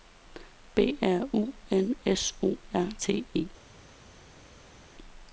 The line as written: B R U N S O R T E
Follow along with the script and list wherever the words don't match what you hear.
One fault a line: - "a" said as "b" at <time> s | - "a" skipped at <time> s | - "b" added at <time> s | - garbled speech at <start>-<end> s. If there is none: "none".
none